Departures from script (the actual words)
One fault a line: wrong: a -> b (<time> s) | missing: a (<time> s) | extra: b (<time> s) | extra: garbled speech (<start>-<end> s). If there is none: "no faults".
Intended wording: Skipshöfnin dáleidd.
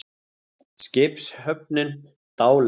no faults